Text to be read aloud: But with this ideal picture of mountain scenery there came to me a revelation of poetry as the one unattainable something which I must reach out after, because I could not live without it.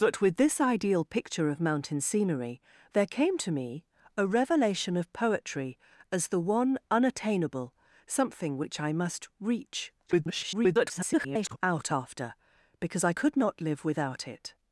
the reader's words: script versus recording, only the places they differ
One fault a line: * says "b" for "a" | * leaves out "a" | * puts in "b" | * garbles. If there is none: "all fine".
* garbles